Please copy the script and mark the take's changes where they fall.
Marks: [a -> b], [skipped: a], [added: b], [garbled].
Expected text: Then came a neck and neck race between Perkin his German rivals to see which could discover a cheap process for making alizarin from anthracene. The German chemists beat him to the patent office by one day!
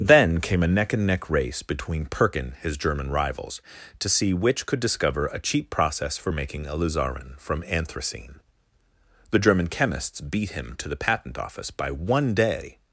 Then came a neck and neck race between Perkin his German rivals to see which could discover a cheap process for making alizarin from anthracene. The German chemists beat him to the patent office by one day!